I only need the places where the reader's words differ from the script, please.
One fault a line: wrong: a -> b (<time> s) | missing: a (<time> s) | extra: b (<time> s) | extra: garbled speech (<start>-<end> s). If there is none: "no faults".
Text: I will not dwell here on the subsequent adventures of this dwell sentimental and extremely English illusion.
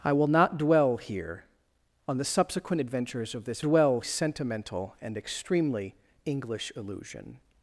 no faults